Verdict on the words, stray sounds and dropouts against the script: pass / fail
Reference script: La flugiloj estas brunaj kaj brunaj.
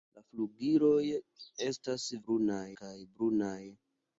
pass